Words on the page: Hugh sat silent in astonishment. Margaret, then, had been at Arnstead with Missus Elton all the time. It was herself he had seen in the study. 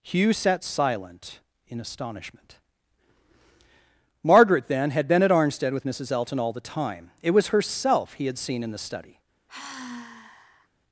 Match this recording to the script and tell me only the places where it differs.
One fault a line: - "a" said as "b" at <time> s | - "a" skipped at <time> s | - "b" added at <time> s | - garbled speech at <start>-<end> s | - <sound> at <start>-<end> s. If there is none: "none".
- sigh at 9.5-10.7 s